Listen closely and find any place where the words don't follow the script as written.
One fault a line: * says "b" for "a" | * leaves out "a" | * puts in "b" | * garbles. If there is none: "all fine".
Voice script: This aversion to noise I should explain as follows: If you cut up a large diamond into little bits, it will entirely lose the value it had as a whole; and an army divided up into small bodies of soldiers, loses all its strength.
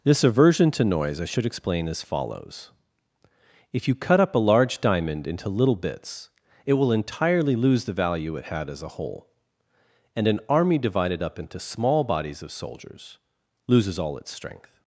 all fine